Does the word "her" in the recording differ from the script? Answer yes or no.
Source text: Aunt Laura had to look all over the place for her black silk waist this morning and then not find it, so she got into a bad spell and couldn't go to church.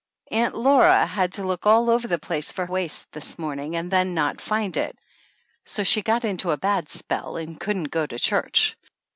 yes